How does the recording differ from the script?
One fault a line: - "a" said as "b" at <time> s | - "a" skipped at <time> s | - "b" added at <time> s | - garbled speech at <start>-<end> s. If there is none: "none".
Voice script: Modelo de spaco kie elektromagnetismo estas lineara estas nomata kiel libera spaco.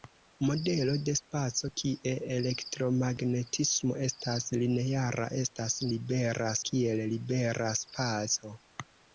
- "nomata" said as "libera" at 6.0 s